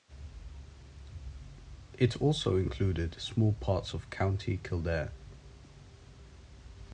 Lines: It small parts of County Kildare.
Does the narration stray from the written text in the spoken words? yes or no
yes